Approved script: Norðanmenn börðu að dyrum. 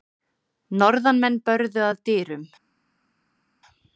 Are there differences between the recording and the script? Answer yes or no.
no